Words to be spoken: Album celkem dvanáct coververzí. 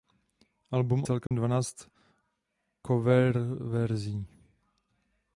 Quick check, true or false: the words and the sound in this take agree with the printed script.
false